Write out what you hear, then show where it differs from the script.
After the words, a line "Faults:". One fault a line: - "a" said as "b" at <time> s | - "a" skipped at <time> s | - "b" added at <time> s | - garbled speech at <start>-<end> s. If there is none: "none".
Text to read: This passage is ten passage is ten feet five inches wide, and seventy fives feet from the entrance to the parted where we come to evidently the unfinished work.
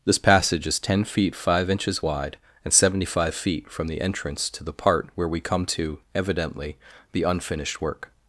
This passage is ten feet five inches wide, and seventy five feet from the entrance to the part where we come to evidently the unfinished work.
Faults:
- "passage is ten" skipped at 1.0 s
- "fives" said as "five" at 3.0 s
- "parted" said as "part" at 4.7 s